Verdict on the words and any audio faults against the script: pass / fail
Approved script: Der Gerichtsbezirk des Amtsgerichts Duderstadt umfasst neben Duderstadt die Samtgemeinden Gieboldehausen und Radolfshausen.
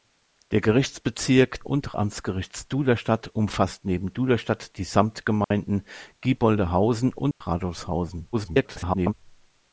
fail